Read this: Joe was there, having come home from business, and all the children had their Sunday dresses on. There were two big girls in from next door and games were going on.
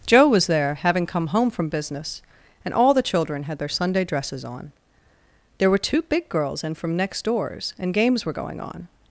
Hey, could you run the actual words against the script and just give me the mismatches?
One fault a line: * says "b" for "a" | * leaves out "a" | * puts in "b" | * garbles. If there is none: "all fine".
* says "doors" for "door"